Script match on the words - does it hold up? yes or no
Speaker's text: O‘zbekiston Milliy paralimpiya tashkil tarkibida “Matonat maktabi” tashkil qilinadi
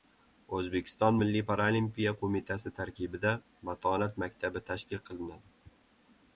no